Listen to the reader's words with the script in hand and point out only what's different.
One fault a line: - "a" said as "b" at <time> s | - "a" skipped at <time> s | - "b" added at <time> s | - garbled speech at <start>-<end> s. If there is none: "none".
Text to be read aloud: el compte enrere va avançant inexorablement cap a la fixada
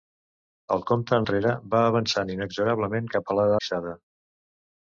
none